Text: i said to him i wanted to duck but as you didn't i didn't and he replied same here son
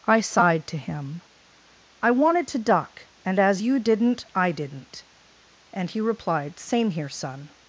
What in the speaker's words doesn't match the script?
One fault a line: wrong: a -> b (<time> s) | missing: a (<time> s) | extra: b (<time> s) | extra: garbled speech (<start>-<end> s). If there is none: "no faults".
wrong: said -> sighed (0.2 s)
wrong: but -> and (3.2 s)